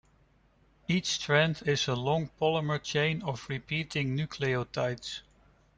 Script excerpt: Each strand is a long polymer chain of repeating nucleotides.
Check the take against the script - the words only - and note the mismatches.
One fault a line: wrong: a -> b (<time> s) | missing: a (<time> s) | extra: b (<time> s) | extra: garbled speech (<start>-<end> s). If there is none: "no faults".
no faults